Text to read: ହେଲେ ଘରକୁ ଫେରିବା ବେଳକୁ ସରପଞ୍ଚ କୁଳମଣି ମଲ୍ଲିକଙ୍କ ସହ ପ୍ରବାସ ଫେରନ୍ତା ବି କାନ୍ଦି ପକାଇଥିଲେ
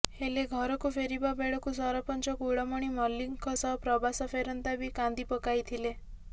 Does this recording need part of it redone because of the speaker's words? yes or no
no